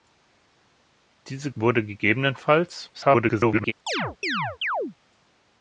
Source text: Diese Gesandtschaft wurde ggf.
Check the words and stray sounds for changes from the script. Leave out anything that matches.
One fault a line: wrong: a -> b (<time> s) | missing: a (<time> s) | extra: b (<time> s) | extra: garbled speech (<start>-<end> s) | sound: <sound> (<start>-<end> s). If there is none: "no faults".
missing: Gesandtschaft (1.5 s)
extra: garbled speech (2.9-3.7 s)
sound: chirp (3.9-4.9 s)